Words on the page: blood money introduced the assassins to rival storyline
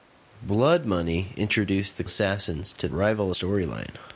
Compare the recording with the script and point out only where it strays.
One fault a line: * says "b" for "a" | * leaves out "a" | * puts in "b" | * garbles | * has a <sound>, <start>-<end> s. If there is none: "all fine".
all fine